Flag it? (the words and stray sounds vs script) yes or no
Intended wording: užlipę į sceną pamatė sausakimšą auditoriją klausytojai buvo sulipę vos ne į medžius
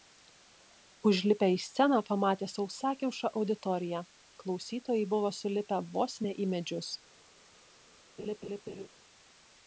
yes